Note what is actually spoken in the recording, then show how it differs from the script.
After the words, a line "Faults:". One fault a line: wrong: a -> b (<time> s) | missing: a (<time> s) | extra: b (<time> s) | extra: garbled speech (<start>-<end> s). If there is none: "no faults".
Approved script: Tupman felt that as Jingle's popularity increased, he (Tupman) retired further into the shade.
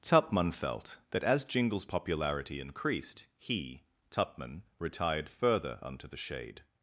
Tupman felt that as Jingle's popularity increased, he (Tupman) retired further unto the shade.
Faults:
wrong: into -> unto (5.8 s)